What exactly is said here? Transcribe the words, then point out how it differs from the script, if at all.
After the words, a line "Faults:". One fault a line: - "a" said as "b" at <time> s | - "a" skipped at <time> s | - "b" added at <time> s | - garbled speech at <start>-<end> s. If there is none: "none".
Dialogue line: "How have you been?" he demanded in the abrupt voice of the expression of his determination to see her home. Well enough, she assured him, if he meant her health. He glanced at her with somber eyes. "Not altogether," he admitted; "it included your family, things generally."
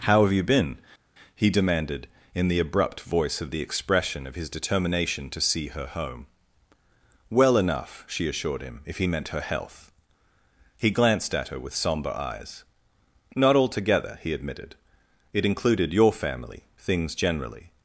"How have you been?" he demanded in the abrupt voice of the expression of his determination to see her home. Well enough, she assured him, if he meant her health. He glanced at her with somber eyes. "Not altogether," he admitted; "it included your family, things generally."
Faults:
none